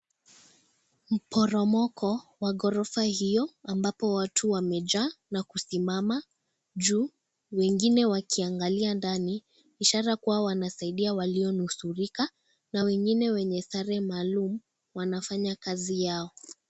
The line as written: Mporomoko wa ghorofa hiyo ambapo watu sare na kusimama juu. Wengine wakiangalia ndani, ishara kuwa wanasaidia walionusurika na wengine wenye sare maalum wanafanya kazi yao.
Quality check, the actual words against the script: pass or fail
fail